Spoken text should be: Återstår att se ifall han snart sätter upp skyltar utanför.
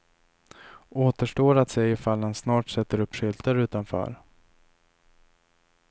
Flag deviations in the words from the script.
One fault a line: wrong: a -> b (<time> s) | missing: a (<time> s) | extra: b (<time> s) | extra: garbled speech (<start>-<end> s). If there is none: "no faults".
no faults